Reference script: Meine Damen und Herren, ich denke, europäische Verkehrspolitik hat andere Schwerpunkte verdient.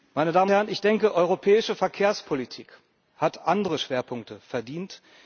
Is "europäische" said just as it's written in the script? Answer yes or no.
yes